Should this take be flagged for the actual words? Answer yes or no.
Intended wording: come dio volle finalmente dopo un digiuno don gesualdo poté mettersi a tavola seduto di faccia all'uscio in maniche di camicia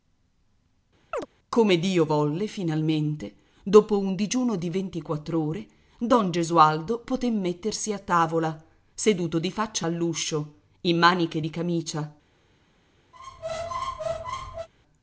yes